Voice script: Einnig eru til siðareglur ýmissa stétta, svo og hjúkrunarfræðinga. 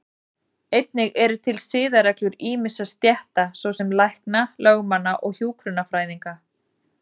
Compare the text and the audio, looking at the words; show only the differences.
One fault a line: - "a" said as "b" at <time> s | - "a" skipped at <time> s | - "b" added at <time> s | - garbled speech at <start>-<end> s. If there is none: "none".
- "sem lækna lögmanna" added at 3.8 s